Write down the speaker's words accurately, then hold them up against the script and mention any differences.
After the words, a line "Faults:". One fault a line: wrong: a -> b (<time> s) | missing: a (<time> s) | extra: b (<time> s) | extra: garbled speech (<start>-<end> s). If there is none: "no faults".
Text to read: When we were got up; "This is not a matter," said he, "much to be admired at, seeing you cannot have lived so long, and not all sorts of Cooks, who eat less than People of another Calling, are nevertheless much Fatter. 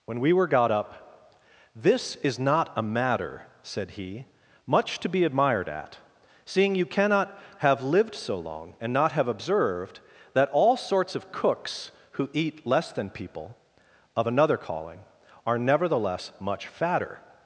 When we were got up; "This is not a matter," said he, "much to be admired at, seeing you cannot have lived so long, and not have observed, that all sorts of Cooks, who eat less than People of another Calling, are nevertheless much Fatter.
Faults:
extra: have observed that (9.1 s)